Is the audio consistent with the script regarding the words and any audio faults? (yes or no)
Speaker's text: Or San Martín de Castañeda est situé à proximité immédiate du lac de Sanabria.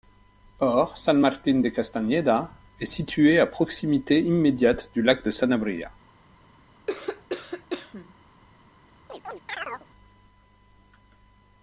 no